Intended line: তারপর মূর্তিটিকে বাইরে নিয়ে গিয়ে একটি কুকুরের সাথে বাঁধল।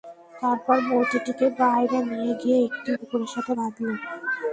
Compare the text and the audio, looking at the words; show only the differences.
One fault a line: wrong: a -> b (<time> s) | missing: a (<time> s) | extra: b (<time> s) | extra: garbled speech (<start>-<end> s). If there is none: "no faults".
no faults